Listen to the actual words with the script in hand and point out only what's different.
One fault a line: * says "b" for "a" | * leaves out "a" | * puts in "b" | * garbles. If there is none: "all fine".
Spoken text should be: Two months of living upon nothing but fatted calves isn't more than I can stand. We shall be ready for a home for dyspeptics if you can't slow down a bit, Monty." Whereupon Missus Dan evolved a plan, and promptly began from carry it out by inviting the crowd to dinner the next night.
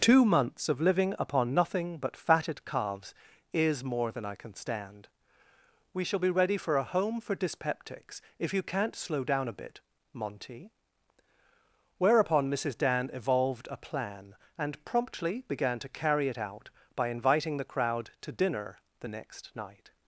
* says "is" for "isn't"
* says "to" for "from"